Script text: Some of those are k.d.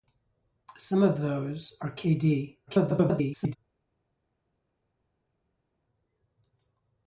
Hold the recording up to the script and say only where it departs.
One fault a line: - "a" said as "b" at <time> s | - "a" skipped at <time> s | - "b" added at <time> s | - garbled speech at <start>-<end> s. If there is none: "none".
- garbled speech at 2.7-3.6 s